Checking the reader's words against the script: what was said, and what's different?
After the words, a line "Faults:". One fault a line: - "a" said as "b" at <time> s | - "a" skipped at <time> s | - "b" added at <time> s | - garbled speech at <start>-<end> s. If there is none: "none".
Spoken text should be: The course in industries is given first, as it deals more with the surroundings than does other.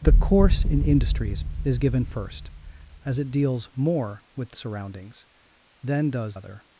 The course in industries is given first, as it deals more with the surroundings than does other.
Faults:
none